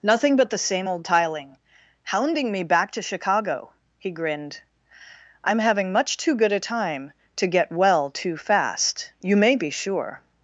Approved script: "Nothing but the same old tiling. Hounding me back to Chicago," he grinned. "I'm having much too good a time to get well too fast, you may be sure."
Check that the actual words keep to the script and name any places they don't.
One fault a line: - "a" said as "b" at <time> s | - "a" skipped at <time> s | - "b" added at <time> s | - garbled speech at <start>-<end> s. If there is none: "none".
none